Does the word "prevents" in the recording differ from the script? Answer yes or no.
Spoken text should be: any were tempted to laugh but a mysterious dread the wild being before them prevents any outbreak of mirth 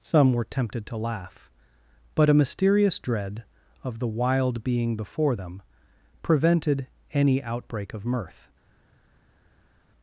yes